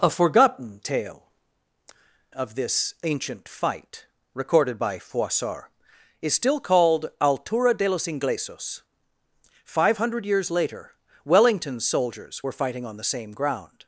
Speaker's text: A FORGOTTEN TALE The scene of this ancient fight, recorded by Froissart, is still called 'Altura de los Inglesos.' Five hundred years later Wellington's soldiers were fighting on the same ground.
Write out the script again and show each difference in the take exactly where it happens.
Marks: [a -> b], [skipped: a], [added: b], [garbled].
A FORGOTTEN TALE [skipped: The scene] of this ancient fight, recorded by Froissart, is still called 'Altura de los Inglesos.' Five hundred years later Wellington's soldiers were fighting on the same ground.